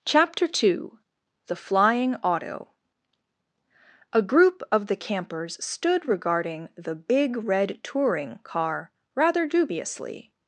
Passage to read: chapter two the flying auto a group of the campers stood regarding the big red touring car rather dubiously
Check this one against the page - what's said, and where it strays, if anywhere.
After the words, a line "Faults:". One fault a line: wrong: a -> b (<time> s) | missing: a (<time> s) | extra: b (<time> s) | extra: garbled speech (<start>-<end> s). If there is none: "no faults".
chapter two the flying auto a group of the campers stood regarding the big red touring car rather dubiously
Faults:
no faults